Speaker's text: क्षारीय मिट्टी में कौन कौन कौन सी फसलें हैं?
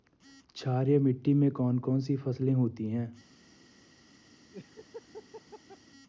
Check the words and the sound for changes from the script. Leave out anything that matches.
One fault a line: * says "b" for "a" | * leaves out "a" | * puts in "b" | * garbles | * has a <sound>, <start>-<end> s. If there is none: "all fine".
* leaves out "कौन"
* puts in "होती"
* has a laugh, 4.5-5.8 s